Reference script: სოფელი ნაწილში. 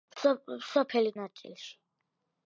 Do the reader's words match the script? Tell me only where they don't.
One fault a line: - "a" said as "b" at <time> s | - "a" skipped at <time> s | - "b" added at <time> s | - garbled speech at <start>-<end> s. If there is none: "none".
none